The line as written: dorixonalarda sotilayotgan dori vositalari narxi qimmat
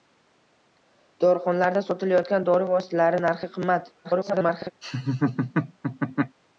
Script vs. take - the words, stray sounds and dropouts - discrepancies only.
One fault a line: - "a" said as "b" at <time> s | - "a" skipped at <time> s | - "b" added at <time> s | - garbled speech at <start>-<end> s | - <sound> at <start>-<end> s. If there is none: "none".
- garbled speech at 4.0-4.7 s
- laugh at 4.8-6.4 s